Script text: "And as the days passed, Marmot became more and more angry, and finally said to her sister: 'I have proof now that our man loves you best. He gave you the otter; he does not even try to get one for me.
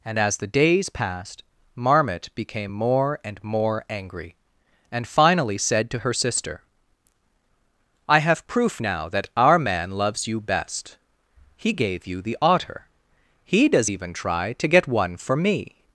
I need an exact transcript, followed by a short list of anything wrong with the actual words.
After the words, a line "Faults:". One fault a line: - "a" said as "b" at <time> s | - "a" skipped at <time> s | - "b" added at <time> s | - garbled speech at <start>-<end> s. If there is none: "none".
"And as the days passed, Marmot became more and more angry, and finally said to her sister: 'I have proof now that our man loves you best. He gave you the otter; he does even try to get one for me.
Faults:
- "not" skipped at 13.9 s